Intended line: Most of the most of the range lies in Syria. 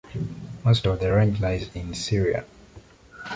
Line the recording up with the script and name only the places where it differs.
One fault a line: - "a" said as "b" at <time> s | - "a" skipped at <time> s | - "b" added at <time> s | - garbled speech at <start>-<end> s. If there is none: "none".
- "most of the" skipped at 1.1 s